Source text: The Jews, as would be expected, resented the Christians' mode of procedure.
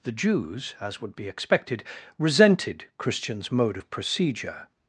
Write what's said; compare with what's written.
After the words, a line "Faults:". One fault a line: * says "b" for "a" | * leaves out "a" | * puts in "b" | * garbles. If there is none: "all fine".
The Jews, as would be expected, resented Christians' mode of procedure.
Faults:
* leaves out "the"